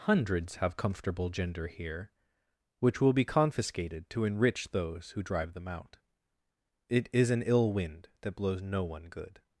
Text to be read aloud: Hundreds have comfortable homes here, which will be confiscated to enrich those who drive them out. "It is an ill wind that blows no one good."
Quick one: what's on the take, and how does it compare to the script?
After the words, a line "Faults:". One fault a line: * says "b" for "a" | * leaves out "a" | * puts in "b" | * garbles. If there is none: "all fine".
Hundreds have comfortable gender here, which will be confiscated to enrich those who drive them out. "It is an ill wind that blows no one good."
Faults:
* says "gender" for "homes"